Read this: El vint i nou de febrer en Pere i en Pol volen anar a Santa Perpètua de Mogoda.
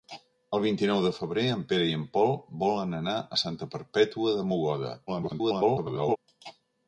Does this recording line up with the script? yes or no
no